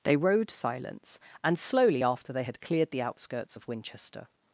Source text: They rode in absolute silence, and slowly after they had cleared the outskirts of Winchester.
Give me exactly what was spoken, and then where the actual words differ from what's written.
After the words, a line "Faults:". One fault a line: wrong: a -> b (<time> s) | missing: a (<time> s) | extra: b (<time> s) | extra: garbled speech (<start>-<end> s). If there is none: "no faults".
They rode silence, and slowly after they had cleared the outskirts of Winchester.
Faults:
missing: in absolute (0.5 s)